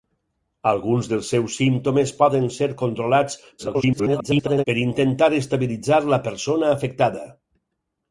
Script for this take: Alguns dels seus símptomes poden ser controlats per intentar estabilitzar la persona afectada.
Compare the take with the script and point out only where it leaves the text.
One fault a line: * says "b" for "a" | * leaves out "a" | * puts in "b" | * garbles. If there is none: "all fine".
* garbles